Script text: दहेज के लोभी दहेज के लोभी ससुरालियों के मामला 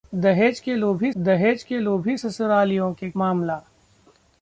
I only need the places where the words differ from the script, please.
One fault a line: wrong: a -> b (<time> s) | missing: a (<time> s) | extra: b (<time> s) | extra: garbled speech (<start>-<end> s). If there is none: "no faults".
no faults